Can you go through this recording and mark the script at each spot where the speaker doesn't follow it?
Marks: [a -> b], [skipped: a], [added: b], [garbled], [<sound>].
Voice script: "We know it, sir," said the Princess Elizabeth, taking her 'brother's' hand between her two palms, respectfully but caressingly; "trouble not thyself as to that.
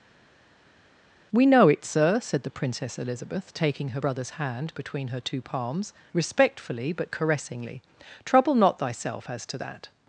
"We know it, sir," said the Princess Elizabeth, taking her 'brother's' hand between her two palms, respectfully but caressingly; "trouble not thyself as to that.